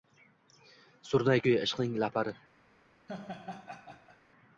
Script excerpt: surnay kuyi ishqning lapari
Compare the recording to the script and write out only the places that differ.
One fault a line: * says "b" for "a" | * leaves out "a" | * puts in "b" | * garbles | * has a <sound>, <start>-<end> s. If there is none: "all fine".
* has a laugh, 3.1-4.2 s